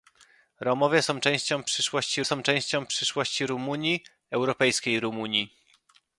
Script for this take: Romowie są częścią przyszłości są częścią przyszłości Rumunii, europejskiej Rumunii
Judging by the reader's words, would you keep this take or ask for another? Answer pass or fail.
pass